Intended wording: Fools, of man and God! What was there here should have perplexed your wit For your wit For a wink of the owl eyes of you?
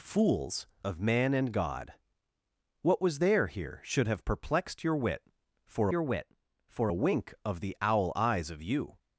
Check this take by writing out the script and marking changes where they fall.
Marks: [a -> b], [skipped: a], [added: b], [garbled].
Fools, of man and God! What was there here should have perplexed your wit For your wit For a wink of the owl eyes of you?